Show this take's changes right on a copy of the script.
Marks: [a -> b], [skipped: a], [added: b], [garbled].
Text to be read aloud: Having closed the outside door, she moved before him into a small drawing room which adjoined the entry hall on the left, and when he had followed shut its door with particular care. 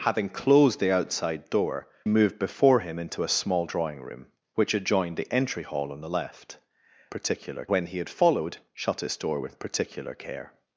Having closed the outside door, [skipped: she] moved before him into a small drawing room which adjoined the entry hall on the left, [and -> particular] when he had followed shut its door with particular care.